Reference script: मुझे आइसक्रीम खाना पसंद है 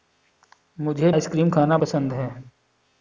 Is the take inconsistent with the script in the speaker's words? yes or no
no